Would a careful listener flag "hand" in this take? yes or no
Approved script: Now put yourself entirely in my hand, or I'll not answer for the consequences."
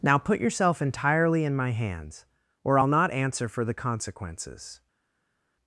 yes